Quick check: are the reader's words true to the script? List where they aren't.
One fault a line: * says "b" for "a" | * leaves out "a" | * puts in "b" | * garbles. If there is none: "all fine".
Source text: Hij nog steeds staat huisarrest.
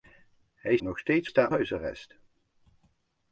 all fine